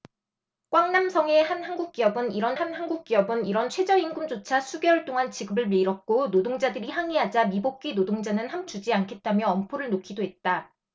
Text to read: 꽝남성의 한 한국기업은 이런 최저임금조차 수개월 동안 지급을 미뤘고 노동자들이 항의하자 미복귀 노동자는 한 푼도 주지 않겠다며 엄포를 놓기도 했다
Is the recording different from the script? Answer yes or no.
yes